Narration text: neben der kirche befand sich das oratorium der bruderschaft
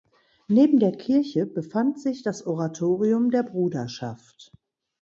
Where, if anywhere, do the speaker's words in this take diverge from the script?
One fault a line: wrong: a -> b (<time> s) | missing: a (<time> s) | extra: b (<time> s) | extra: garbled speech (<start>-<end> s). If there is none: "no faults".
no faults